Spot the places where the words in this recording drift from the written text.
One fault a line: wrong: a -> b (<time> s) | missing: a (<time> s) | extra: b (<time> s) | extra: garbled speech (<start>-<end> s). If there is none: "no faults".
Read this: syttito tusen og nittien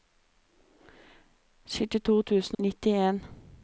missing: og (2.6 s)